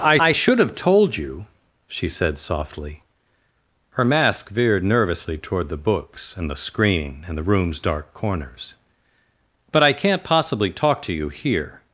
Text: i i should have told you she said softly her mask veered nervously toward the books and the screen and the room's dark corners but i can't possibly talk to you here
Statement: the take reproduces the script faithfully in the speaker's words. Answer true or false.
true